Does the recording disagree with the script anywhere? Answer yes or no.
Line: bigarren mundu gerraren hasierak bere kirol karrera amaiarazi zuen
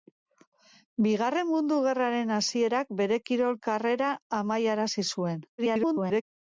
yes